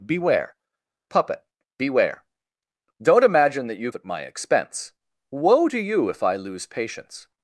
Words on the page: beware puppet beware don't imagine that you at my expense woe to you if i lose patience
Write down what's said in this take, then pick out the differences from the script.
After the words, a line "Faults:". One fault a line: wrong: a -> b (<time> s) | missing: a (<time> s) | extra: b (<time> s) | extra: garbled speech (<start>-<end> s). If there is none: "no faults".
beware puppet beware don't imagine that you at my expense woe to you if i lose patience
Faults:
no faults